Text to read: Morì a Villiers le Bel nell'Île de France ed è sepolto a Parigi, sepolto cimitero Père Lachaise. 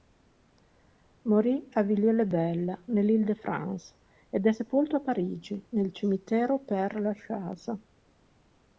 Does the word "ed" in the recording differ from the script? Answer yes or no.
no